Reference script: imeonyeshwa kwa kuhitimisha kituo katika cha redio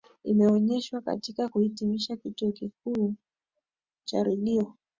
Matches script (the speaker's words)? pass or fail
fail